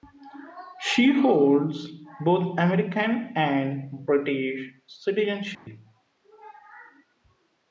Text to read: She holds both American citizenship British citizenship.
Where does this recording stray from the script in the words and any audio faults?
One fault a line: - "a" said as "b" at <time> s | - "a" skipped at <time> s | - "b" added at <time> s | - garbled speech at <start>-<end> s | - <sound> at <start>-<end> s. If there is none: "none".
- "citizenship" said as "and" at 3.4 s
- dropout at 5.5-5.7 s